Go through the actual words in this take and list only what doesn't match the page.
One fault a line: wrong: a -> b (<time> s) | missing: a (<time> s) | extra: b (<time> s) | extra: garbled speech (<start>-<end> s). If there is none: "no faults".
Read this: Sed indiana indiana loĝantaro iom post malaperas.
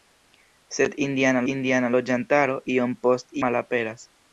no faults